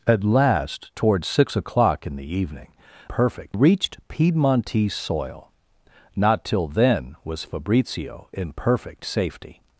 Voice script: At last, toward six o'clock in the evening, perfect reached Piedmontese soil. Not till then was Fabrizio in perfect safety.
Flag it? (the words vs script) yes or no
no